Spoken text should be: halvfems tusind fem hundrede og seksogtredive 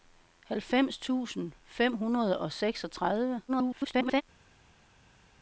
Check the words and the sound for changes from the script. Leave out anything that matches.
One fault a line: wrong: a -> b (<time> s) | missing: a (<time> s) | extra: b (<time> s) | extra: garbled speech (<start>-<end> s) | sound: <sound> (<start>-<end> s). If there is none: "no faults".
extra: garbled speech (3.5-4.2 s)